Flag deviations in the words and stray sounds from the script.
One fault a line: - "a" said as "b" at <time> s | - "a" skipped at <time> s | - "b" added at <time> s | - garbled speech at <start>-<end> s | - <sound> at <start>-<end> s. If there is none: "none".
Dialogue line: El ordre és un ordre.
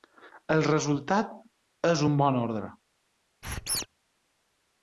- "ordre" said as "resultat" at 0.7 s
- "bon" added at 2.2 s
- squeak at 3.4-3.9 s